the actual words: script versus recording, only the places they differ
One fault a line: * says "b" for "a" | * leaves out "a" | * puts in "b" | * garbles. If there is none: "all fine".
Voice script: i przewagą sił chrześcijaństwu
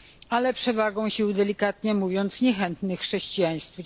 * says "ale" for "i"
* puts in "delikatnie mówiąc niechętnych"